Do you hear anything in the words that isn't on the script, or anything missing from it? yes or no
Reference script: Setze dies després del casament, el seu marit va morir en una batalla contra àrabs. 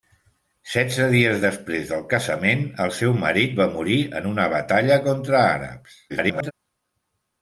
yes